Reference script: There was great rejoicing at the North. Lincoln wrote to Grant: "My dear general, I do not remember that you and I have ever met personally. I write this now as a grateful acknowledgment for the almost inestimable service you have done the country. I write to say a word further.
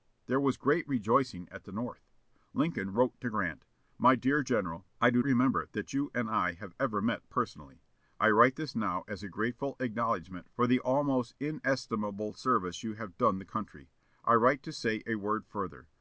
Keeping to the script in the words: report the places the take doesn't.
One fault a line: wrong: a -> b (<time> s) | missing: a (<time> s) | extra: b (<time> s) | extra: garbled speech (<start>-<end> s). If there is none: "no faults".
missing: not (5.2 s)